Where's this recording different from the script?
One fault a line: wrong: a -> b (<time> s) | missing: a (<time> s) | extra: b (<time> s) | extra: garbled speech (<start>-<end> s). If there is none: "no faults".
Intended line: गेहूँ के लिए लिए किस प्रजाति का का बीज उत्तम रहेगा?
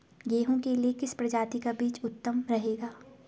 missing: लिए (0.9 s)
missing: का (1.7 s)